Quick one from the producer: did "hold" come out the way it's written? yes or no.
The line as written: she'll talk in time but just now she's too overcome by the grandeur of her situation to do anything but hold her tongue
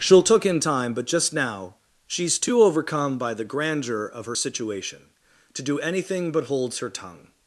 no